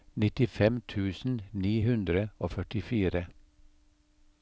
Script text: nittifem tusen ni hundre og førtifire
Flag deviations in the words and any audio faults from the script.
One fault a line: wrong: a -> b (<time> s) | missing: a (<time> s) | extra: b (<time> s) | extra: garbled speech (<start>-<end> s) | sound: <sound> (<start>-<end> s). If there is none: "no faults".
no faults